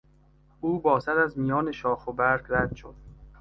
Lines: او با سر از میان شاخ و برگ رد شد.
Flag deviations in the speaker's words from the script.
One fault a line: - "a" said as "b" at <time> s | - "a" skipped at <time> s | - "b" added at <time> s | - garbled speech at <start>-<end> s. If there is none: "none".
none